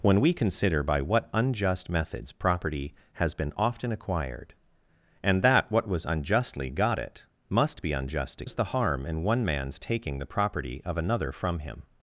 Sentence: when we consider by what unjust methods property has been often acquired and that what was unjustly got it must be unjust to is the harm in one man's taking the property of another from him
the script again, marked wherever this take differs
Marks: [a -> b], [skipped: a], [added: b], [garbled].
when we consider by what unjust methods property has been often acquired and that what was unjustly got it must be unjust to is the harm in one man's taking the property of another from him